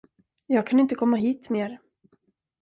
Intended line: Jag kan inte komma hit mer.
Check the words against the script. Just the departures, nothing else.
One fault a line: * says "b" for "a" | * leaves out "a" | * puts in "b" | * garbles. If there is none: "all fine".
all fine